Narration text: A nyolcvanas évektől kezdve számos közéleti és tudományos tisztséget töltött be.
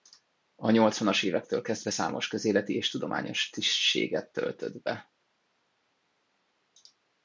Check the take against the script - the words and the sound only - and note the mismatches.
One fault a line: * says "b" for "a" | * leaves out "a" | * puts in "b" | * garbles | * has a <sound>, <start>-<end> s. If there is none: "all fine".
all fine